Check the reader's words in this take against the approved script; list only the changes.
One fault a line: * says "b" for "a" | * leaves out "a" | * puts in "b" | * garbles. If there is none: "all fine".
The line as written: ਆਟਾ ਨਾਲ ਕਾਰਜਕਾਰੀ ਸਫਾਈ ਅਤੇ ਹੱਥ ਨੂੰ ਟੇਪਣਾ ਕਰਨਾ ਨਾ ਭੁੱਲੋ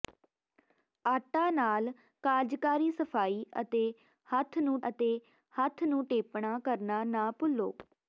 * puts in "ਅਤੇ ਹੱਥ ਨੂੰ"